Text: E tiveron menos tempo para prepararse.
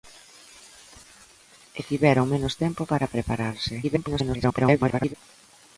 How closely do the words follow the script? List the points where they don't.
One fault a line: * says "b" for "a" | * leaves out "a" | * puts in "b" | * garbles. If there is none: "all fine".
* garbles